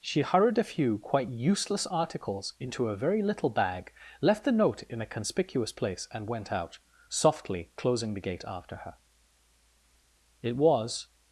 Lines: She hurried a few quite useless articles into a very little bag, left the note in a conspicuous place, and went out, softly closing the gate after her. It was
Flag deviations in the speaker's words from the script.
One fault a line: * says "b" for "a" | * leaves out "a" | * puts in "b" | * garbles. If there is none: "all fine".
all fine